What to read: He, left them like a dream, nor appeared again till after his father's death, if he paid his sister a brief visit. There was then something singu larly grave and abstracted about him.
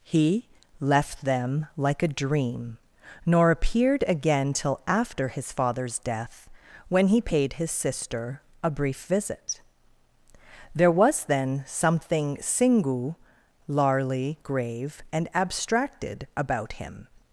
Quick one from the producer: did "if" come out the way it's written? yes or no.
no